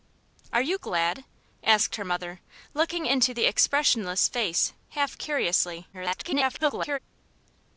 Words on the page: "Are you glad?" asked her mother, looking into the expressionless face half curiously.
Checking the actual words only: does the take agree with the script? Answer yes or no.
no